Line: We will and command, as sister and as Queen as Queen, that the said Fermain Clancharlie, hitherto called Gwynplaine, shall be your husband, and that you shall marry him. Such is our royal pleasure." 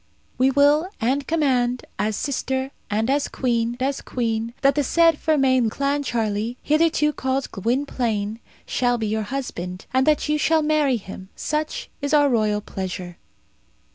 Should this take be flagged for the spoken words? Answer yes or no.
no